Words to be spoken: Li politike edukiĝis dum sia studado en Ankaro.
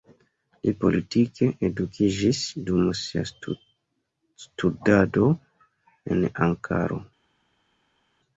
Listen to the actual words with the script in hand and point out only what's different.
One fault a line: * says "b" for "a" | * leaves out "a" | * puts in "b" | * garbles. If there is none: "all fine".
all fine